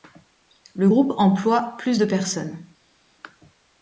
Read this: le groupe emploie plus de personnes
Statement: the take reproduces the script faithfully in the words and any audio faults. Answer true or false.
true